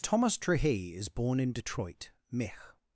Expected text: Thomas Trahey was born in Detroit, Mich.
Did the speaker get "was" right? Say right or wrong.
wrong